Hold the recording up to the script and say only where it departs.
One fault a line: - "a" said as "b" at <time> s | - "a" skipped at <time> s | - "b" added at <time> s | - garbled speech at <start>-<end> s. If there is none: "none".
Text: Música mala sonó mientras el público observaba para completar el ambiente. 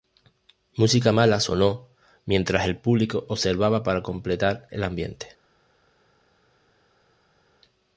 none